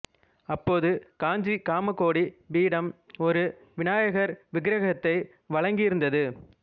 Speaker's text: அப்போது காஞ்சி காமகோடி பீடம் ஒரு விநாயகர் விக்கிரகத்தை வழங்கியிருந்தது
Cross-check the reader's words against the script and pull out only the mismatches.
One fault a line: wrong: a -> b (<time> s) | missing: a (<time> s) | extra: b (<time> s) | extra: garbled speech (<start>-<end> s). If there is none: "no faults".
no faults